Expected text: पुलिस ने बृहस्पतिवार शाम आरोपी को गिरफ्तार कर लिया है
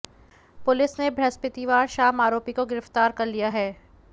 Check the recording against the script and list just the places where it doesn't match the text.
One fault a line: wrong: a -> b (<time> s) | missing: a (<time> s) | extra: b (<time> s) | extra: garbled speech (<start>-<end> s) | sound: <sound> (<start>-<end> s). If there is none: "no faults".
no faults